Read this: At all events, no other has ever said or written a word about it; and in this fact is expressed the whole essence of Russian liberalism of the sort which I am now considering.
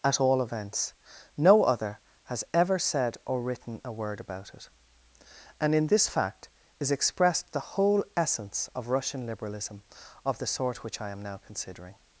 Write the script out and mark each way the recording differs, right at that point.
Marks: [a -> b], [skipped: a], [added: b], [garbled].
At all events, no other has ever said or written a word about it; and in this fact is expressed the whole essence of Russian liberalism of the sort which I am now considering.